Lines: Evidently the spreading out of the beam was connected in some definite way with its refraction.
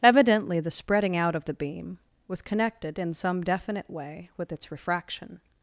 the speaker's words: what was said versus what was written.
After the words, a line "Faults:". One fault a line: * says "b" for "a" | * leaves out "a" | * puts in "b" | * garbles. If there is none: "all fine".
Evidently the spreading out of the beam was connected in some definite way with its refraction.
Faults:
all fine